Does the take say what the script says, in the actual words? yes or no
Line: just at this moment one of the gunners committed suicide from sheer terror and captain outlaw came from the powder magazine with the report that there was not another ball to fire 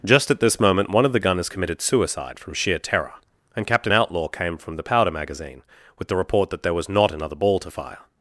yes